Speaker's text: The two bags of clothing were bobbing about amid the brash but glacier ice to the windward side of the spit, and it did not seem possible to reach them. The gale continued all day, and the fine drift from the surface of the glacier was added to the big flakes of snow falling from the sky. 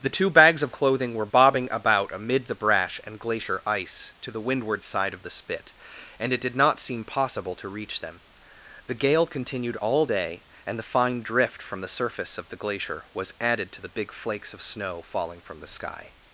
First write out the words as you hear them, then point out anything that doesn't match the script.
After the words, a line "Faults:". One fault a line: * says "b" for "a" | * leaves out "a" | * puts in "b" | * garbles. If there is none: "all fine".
The two bags of clothing were bobbing about amid the brash and glacier ice to the windward side of the spit, and it did not seem possible to reach them. The gale continued all day, and the fine drift from the surface of the glacier was added to the big flakes of snow falling from the sky.
Faults:
* says "and" for "but"